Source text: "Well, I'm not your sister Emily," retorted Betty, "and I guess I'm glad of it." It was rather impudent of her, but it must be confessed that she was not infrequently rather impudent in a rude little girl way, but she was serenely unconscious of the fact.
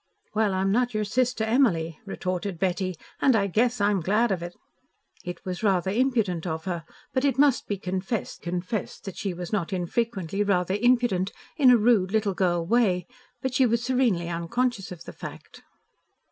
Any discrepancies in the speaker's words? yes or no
yes